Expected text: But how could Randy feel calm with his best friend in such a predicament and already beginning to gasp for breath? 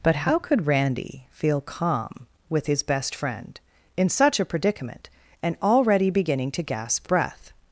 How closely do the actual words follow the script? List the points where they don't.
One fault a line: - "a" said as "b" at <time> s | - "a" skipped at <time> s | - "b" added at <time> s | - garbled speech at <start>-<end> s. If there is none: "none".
- "for" skipped at 7.1 s